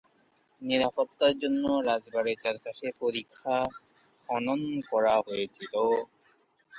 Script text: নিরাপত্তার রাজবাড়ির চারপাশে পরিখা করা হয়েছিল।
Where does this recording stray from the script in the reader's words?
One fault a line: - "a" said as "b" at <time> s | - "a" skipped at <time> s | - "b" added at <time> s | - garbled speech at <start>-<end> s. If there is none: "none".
- "জন্য" added at 1.4 s
- "খনন" added at 4.3 s